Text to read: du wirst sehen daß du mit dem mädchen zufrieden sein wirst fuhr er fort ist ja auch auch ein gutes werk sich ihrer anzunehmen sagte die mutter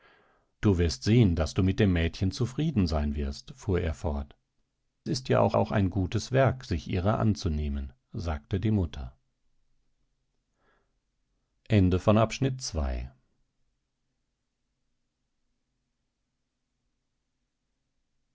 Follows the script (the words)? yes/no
yes